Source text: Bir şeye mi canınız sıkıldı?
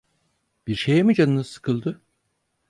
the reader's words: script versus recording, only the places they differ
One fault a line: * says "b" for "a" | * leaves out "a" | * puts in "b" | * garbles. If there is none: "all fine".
all fine